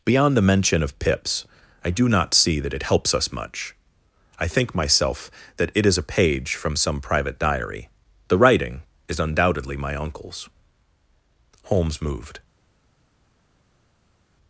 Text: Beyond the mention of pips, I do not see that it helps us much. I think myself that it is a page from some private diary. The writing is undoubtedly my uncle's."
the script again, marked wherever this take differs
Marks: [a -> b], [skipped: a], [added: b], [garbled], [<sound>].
Beyond the mention of pips, I do not see that it helps us much. I think myself that it is a page from some private diary. The writing is undoubtedly my uncle's." [added: Holmes moved]